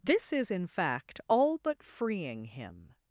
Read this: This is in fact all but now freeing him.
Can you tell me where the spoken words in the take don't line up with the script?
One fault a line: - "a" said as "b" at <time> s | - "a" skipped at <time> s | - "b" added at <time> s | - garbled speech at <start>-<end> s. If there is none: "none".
- "now" skipped at 1.8 s